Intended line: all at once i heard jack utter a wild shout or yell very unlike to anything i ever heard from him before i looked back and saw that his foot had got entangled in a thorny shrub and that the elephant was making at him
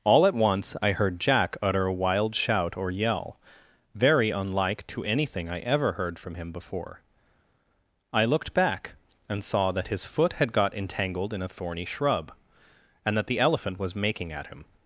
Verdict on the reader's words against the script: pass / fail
pass